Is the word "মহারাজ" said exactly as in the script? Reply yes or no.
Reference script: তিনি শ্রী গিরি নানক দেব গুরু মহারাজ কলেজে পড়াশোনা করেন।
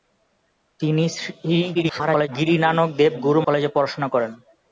no